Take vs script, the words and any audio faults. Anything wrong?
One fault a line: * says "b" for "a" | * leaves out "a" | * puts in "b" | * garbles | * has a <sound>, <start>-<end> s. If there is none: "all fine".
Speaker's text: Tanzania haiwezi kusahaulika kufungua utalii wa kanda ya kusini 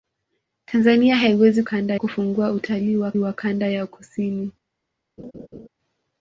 * says "kanda" for "kusahaulika"
* puts in "wa"
* has a laugh, 5.2-5.7 s